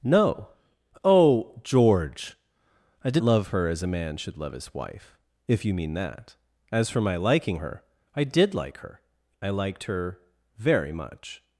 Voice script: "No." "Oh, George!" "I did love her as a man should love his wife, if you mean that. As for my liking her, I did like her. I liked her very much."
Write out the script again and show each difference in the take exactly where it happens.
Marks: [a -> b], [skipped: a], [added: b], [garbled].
"No." "Oh, George!" "I did love her as a man should love his wife, if you mean that. As for my liking her, I did like her. I liked her very much."